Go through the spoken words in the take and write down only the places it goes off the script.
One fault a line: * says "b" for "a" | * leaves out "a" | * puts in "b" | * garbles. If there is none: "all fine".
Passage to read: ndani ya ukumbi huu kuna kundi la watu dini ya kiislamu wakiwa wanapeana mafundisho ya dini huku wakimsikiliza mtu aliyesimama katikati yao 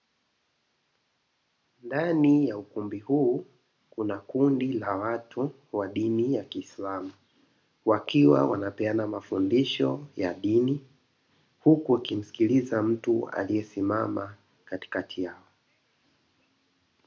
* puts in "wa"